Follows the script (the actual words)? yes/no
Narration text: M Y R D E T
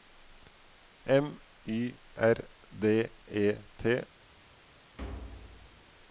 yes